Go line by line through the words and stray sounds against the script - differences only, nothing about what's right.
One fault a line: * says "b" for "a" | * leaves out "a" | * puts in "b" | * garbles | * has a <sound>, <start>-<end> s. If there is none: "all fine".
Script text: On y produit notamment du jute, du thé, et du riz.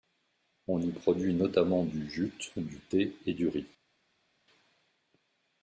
all fine